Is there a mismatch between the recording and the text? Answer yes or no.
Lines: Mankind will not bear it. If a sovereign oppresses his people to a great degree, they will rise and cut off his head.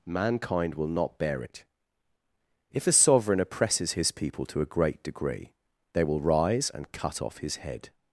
no